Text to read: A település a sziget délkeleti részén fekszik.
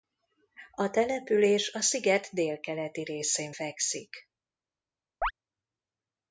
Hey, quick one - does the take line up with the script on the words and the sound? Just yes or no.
no